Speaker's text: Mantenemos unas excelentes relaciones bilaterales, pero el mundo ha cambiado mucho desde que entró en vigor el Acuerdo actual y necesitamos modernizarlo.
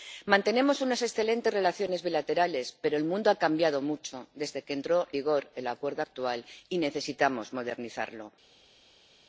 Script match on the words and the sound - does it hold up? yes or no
no